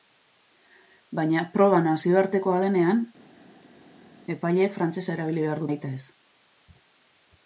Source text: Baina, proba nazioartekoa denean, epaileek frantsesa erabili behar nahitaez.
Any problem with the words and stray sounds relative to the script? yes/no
no